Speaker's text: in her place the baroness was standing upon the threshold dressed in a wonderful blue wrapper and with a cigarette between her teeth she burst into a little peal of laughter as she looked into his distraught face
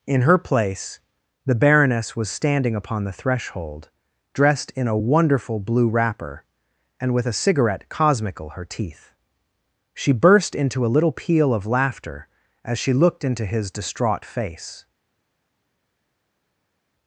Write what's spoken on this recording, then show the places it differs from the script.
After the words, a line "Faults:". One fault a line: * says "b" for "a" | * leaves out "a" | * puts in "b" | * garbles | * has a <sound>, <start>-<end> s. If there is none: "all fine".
in her place the baroness was standing upon the threshold dressed in a wonderful blue wrapper and with a cigarette cosmical her teeth she burst into a little peal of laughter as she looked into his distraught face
Faults:
* says "cosmical" for "between"